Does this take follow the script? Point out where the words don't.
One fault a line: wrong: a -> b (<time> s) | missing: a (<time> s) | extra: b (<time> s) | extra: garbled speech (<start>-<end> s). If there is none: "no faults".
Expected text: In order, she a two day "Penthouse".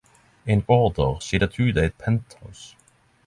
no faults